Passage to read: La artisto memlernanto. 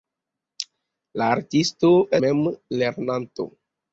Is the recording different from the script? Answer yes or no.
no